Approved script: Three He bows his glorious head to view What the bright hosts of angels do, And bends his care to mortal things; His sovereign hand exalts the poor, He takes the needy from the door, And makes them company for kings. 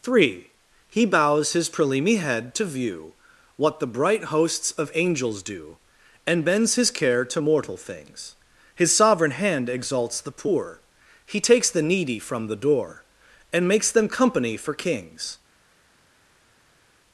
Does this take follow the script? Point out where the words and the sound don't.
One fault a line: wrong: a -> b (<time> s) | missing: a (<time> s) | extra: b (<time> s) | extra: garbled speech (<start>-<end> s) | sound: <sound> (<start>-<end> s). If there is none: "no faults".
wrong: glorious -> prelimi (1.7 s)